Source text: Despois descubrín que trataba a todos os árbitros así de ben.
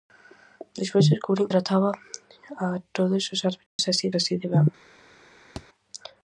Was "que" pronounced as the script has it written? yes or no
no